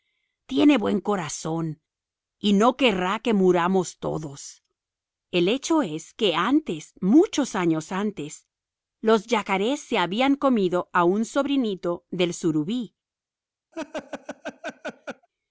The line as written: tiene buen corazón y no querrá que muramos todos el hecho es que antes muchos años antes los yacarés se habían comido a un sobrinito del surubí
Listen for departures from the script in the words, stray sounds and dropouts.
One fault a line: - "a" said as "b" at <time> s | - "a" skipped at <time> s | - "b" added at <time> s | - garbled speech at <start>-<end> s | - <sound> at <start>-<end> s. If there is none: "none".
- laugh at 13.7-15.3 s